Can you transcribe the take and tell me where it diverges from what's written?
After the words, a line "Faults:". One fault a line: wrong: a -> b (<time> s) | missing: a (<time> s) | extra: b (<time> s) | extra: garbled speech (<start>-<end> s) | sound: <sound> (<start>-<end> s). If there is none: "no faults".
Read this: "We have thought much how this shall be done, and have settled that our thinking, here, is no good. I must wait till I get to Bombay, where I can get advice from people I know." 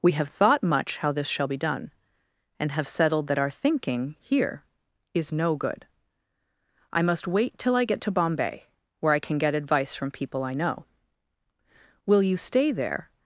"We have thought much how this shall be done, and have settled that our thinking, here, is no good. I must wait till I get to Bombay, where I can get advice from people I know." "Will you stay there
Faults:
extra: Will you stay there (12.1 s)